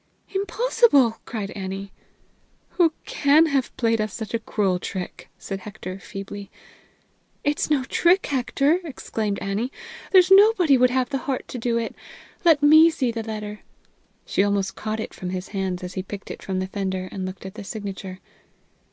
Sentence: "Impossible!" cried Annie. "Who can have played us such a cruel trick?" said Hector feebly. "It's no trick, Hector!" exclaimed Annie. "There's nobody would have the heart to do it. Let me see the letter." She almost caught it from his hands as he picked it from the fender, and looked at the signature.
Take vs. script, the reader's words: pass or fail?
pass